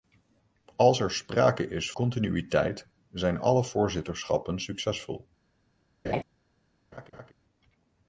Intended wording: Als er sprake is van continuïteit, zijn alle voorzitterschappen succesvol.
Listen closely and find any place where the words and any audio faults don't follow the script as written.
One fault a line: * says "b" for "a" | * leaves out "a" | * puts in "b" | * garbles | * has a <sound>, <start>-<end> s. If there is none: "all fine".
* leaves out "van"
* has a laugh, 6.0-6.2 s
* has a laugh, 6.9-7.3 s